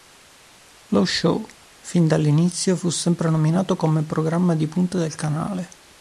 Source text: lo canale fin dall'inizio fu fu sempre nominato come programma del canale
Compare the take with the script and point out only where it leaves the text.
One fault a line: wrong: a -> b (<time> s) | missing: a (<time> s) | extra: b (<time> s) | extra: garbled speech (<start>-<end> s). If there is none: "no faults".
wrong: canale -> show (1.1 s)
missing: fu (2.9 s)
extra: di punta (4.5 s)